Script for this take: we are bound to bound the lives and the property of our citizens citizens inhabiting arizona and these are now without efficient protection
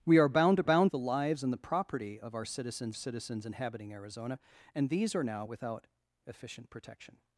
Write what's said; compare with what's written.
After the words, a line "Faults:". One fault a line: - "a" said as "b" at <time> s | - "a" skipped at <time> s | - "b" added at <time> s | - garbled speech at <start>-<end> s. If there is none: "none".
we are bound to bound the lives and the property of our citizens citizens inhabiting arizona and these are now without efficient protection
Faults:
none